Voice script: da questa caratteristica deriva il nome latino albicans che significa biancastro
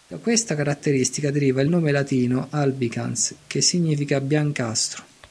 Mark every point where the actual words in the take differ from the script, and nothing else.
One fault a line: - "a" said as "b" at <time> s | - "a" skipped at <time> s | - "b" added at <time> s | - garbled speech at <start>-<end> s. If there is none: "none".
none